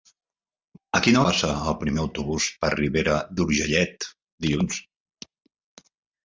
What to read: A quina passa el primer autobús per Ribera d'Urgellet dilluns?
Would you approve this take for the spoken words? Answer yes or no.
yes